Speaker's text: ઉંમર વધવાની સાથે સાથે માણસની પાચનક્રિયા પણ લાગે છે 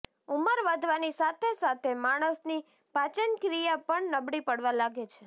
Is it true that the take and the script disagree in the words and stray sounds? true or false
true